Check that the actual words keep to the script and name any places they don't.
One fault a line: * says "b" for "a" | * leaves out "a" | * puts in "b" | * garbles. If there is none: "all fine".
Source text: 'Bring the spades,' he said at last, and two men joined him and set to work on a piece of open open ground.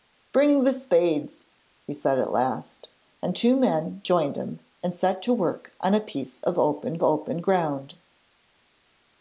all fine